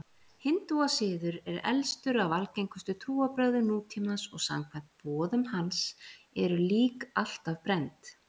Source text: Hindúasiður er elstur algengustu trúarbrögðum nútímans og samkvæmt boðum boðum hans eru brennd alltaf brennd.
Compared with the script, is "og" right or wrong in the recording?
right